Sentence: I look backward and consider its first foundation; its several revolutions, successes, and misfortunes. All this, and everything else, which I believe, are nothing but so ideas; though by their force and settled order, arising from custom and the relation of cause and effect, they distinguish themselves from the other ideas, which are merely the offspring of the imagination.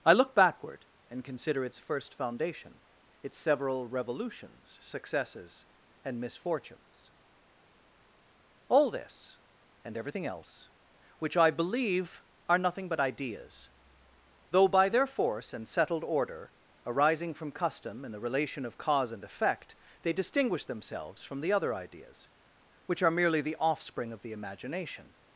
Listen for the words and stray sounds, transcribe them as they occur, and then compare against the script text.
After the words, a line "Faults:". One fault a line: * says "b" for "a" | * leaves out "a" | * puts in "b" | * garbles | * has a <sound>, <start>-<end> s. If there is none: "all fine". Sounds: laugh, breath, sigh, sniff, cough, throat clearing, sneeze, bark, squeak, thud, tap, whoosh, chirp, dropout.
I look backward and consider its first foundation; its several revolutions, successes, and misfortunes. All this, and everything else, which I believe, are nothing but ideas; though by their force and settled order, arising from custom and the relation of cause and effect, they distinguish themselves from the other ideas, which are merely the offspring of the imagination.
Faults:
* leaves out "so"